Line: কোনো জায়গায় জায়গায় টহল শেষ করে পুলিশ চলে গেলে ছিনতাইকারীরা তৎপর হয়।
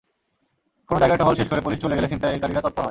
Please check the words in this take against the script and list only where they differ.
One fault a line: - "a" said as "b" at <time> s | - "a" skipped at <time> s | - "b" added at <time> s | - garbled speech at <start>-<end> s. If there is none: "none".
- "জায়গায়" skipped at 1.2 s